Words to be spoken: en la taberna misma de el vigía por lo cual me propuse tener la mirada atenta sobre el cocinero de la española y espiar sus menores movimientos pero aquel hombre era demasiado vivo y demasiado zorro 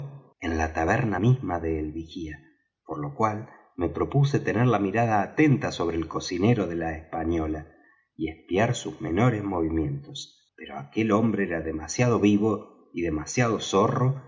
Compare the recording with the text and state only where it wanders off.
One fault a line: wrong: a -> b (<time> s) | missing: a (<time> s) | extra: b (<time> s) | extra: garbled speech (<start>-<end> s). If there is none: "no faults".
no faults